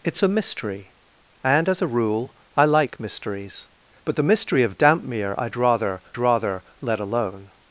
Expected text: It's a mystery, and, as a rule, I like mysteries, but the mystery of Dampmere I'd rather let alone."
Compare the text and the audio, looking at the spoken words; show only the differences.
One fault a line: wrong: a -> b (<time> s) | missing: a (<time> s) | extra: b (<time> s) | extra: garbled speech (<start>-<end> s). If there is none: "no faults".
extra: rather (6.2 s)